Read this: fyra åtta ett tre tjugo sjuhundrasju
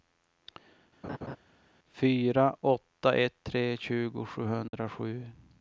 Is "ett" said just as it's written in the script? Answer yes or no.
yes